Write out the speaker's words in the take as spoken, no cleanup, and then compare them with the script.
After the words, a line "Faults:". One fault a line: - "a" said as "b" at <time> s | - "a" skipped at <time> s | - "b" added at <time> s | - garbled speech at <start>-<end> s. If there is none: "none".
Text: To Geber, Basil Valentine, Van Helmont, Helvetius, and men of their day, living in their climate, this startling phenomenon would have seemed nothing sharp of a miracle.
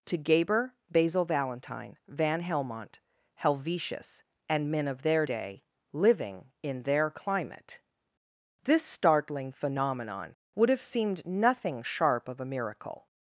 To Geber, Basil Valentine, Van Helmont, Helvetius, and men of their day, living in their climate, this startling phenomenon would have seemed nothing sharp of a miracle.
Faults:
none